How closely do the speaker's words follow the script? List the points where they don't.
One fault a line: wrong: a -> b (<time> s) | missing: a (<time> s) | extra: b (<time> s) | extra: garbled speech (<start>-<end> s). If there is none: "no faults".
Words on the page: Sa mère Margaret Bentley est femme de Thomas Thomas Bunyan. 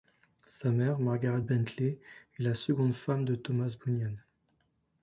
extra: la seconde (2.4 s)
missing: Thomas (3.8 s)